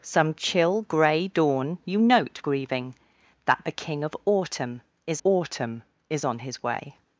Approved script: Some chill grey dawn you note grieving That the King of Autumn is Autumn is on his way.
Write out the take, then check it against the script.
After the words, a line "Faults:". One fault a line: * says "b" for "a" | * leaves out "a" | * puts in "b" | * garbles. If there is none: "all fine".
Some chill grey dawn you note grieving That the King of Autumn is Autumn is on his way.
Faults:
all fine